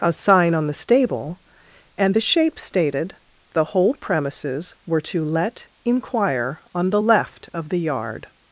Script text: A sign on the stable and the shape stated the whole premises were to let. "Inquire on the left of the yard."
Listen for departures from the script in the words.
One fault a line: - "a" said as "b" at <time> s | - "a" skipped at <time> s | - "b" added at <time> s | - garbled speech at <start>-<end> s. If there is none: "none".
none